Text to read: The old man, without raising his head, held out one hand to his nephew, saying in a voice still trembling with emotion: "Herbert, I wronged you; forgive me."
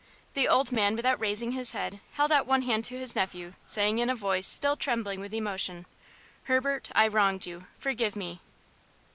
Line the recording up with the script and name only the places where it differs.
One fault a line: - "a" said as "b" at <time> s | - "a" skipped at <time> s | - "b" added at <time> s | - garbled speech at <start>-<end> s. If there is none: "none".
none